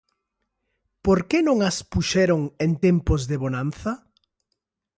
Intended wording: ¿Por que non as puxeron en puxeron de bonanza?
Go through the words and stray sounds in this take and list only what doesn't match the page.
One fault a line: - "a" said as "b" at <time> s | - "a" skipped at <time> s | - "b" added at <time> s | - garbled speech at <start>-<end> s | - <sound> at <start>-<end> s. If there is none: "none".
- "puxeron" said as "tempos" at 2.9 s